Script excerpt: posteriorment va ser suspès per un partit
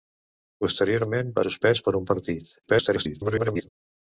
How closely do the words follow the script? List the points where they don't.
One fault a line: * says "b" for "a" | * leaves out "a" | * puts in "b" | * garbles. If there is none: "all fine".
* leaves out "ser"
* garbles